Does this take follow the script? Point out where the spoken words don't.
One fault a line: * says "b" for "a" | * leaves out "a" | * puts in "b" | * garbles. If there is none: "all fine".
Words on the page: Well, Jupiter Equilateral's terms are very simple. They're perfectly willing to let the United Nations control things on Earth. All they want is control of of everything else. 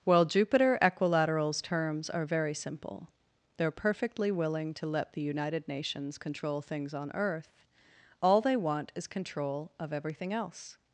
* leaves out "of"